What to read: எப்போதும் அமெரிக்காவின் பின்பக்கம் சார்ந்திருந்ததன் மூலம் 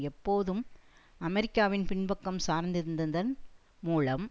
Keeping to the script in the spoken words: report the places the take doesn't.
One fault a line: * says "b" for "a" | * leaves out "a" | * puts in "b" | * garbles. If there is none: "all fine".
all fine